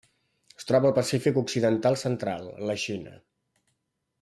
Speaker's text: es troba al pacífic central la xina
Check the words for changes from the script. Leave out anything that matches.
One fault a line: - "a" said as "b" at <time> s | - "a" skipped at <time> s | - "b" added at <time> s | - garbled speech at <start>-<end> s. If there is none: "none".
- "occidental" added at 1.4 s